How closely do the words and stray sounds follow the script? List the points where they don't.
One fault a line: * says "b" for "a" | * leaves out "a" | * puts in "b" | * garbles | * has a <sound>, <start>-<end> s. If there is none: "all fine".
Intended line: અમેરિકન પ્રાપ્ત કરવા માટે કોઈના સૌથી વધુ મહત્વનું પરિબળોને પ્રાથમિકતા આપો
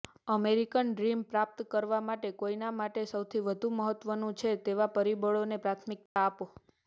* puts in "ડ્રીમ"
* puts in "માટે"
* puts in "છે તેવા"
* has a dropout, 6.1-6.2 s